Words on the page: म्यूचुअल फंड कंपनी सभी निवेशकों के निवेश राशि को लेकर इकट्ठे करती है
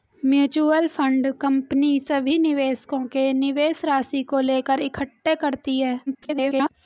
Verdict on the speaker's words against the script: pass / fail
fail